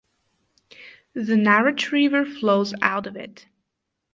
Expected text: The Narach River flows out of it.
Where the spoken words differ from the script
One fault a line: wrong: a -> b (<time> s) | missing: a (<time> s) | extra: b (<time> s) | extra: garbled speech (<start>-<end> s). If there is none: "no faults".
no faults